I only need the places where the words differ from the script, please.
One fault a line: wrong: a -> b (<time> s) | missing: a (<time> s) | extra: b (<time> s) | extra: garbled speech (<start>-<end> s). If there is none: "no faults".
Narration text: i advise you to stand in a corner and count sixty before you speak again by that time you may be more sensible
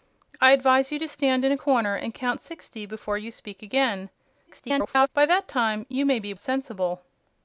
extra: garbled speech (4.5-5.1 s)
missing: more (6.3 s)